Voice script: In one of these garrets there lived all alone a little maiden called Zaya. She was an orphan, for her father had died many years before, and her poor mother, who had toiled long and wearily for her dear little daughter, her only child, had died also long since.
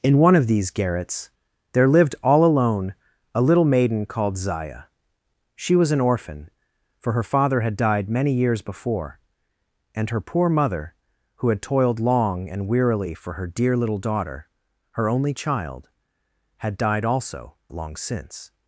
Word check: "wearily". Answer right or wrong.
right